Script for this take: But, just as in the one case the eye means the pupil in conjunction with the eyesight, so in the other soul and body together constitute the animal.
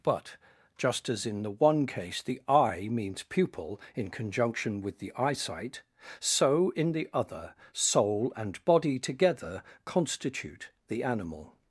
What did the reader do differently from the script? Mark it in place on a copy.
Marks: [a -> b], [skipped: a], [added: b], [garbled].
But, just as in the one case the eye means [skipped: the] pupil in conjunction with the eyesight, so in the other soul and body together constitute the animal.